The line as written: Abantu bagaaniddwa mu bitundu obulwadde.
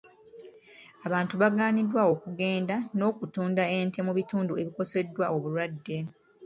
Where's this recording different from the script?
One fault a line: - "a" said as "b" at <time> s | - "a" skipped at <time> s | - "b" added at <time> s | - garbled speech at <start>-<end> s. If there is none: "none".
- "okugenda n'okutunda ente" added at 2.1 s
- "ebikoseddwa" added at 4.6 s